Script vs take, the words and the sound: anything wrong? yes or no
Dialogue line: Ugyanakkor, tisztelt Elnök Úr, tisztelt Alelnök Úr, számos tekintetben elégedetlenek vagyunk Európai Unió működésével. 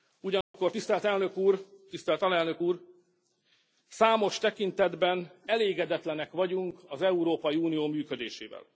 yes